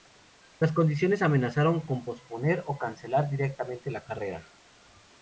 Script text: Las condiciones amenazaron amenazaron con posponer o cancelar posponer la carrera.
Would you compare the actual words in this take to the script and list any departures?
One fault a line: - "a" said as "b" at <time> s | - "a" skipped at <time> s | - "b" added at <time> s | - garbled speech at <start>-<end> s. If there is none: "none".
- "amenazaron" skipped at 1.8 s
- "posponer" said as "directamente" at 3.3 s